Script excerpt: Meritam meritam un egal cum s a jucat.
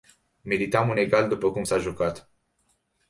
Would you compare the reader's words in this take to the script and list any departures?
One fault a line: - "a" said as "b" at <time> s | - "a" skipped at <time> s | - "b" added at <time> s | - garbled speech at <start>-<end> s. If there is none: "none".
- "meritam" skipped at 0.9 s
- "după" added at 1.3 s